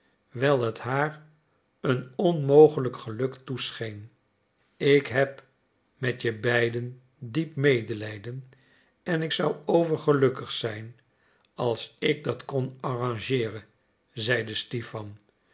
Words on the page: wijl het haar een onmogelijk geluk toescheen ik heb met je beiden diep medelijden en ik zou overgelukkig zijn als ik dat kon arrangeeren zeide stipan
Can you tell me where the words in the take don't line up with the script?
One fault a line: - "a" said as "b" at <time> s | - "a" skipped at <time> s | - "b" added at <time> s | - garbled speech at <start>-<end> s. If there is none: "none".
none